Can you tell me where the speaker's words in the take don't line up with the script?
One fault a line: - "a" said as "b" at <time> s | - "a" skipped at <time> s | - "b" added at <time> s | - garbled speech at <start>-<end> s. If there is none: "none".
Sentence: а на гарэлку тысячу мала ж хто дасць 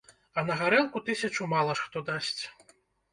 none